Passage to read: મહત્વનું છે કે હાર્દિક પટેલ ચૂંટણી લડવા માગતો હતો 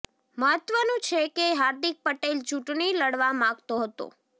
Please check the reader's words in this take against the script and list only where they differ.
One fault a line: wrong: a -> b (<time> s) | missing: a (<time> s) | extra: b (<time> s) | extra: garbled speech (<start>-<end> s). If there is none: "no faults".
no faults